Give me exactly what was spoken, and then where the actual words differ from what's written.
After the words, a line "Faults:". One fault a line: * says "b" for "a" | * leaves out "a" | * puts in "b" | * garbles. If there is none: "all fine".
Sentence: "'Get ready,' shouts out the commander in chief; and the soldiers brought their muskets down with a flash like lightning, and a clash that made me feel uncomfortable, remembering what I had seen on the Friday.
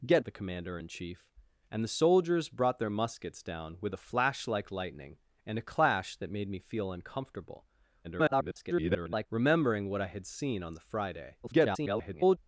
"'Get the commander in chief; and the soldiers brought their muskets down with a flash like lightning, and a clash that made me feel uncomfortable, [garbled] remembering what I had seen on the Friday. [garbled]
Faults:
* leaves out "ready shouts out"
* garbles
* garbles